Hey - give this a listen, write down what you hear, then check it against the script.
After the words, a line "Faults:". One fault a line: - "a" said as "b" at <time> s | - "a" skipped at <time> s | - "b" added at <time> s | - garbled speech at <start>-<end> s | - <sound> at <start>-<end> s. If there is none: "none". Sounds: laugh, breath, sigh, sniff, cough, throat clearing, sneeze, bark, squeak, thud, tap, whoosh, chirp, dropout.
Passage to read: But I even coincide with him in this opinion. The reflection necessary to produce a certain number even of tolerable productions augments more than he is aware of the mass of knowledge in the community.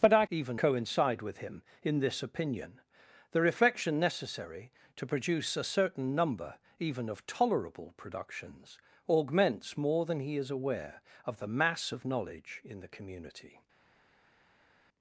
But I even coincide with him in this opinion. The reflection necessary to produce a certain number even of tolerable productions augments more than he is aware of the mass of knowledge in the community.
Faults:
none